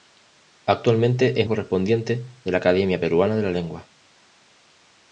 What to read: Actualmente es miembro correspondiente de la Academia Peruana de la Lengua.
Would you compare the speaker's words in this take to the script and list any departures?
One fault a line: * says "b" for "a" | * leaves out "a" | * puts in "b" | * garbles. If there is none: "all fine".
* leaves out "miembro"